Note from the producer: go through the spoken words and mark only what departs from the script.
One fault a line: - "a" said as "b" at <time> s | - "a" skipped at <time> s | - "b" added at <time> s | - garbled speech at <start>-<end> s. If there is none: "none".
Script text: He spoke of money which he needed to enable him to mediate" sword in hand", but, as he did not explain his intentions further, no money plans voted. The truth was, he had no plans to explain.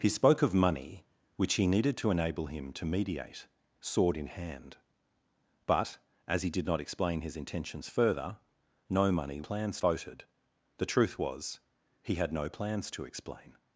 none